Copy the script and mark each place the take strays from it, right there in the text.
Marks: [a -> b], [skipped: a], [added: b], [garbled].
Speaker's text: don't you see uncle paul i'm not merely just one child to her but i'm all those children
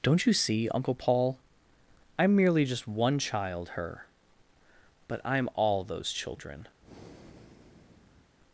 don't you see uncle paul i'm [skipped: not] merely just one child [skipped: to] her but i'm all those children